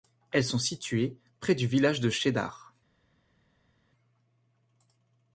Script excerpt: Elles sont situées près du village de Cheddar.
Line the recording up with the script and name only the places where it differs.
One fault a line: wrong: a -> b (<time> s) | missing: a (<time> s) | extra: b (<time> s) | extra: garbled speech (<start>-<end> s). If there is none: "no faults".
no faults